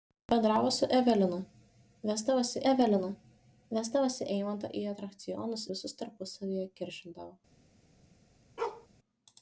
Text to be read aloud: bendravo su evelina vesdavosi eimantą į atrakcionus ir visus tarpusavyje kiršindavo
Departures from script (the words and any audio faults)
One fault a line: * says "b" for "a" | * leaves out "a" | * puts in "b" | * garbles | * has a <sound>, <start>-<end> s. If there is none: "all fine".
* puts in "evelina vesdavosi"
* leaves out "ir"
* has a bark, 8.6-8.9 s